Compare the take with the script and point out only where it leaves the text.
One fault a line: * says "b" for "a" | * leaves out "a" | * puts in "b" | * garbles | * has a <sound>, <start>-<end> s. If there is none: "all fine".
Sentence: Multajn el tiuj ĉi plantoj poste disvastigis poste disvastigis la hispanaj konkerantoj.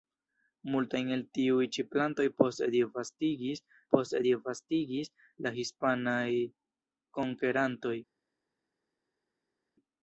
all fine